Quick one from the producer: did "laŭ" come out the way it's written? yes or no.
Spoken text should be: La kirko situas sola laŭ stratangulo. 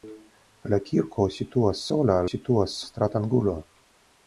no